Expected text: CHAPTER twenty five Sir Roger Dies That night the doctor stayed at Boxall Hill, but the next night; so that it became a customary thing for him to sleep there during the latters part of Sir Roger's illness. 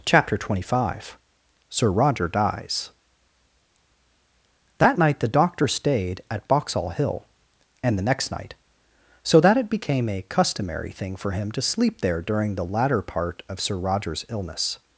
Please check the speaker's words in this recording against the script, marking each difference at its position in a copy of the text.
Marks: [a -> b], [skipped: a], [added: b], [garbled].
CHAPTER twenty five Sir Roger Dies That night the doctor stayed at Boxall Hill, [but -> and] the next night; so that it became a customary thing for him to sleep there during the [latters -> latter] part of Sir Roger's illness.